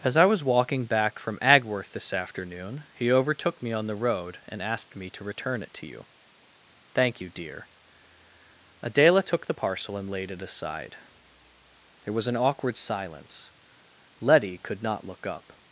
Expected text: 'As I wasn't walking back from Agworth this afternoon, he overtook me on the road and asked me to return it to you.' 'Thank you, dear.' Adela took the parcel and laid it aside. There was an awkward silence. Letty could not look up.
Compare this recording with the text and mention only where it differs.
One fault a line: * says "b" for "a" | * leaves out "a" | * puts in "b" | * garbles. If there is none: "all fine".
* says "was" for "wasn't"